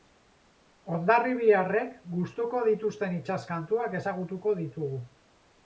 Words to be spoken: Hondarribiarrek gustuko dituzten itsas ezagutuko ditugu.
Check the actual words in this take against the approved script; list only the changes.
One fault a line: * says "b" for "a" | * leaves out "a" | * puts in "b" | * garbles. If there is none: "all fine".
* puts in "kantuak"